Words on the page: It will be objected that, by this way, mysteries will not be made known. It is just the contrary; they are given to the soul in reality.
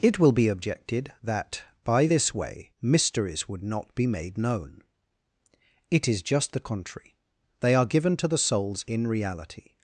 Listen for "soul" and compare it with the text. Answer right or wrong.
wrong